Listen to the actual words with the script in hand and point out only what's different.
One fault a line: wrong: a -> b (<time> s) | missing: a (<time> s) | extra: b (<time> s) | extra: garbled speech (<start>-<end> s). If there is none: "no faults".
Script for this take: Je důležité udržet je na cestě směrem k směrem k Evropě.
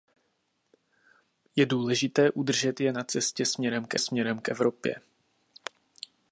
no faults